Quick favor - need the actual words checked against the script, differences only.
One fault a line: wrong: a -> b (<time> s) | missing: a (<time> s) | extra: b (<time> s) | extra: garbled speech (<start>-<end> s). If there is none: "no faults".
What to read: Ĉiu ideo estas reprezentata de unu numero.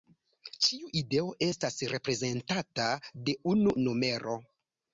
no faults